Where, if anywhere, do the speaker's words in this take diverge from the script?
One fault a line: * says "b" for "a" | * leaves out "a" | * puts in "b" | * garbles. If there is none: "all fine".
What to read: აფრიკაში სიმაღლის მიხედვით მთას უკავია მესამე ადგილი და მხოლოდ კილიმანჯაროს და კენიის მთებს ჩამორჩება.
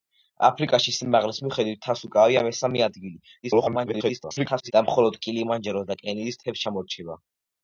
* garbles